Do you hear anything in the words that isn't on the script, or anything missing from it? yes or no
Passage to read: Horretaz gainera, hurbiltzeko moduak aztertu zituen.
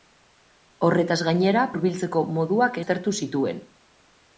no